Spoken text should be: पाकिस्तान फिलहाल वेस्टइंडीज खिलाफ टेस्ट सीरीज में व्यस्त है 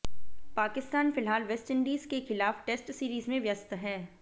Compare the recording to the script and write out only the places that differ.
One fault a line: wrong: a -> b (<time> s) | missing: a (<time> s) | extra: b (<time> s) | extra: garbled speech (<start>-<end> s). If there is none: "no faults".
extra: के (2.0 s)